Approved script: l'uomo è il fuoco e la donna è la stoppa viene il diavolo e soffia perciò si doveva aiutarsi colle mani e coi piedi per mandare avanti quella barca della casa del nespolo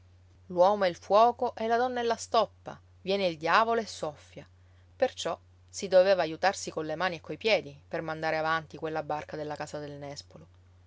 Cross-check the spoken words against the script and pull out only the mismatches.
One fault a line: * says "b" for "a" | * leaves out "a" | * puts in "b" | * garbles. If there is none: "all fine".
all fine